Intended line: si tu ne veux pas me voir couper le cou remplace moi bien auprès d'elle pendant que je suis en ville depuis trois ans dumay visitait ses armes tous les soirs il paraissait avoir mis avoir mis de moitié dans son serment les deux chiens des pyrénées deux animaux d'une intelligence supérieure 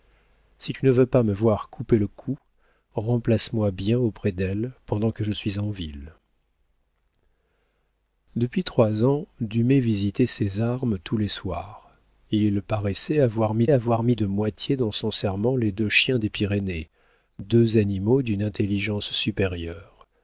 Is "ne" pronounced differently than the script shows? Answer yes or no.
no